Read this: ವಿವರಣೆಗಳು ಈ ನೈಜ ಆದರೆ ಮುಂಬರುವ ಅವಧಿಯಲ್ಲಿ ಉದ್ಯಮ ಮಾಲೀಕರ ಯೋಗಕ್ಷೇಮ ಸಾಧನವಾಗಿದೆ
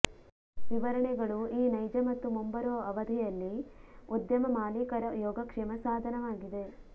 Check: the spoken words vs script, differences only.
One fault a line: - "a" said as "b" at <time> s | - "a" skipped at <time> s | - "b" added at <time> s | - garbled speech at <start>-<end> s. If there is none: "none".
- "ಆದರೆ" said as "ಮತ್ತು" at 2.1 s